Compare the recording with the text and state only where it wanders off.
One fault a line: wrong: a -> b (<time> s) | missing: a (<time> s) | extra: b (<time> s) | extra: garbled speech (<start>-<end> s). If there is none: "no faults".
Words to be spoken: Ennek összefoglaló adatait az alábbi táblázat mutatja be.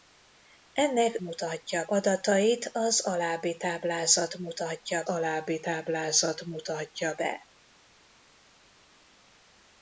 wrong: összefoglaló -> mutatja (1.2 s)
extra: alábbi táblázat mutatja (5.1 s)